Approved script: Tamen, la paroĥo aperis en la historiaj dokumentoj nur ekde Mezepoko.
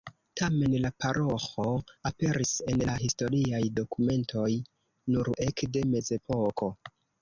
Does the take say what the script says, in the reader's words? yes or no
yes